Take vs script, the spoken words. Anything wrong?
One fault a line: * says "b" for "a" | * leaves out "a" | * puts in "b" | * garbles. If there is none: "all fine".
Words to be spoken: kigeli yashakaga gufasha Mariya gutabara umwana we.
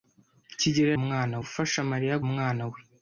* says "umwana" for "yashakaga"
* leaves out "gutabara"